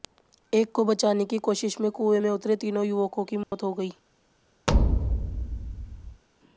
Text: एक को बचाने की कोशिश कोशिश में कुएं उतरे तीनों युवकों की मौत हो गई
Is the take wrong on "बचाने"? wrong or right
right